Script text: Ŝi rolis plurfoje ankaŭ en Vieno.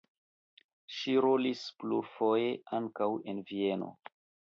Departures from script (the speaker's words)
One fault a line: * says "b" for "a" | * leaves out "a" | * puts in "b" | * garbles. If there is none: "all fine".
all fine